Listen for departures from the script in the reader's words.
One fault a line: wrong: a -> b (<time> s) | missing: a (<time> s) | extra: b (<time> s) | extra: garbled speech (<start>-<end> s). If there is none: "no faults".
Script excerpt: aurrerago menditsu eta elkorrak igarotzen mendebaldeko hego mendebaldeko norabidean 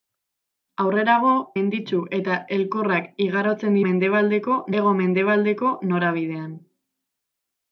no faults